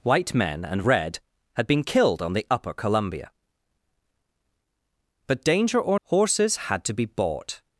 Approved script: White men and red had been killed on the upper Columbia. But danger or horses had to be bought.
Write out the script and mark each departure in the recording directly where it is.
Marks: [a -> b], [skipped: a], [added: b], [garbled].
White men and red had been killed on the upper Columbia. But danger or horses had to be bought.